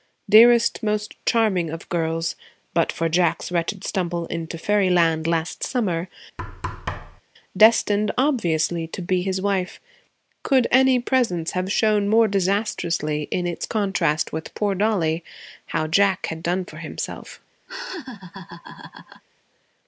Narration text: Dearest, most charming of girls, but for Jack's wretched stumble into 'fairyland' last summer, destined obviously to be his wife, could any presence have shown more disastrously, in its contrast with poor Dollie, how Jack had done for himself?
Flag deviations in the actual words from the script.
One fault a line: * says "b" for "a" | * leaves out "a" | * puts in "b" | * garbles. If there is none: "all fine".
all fine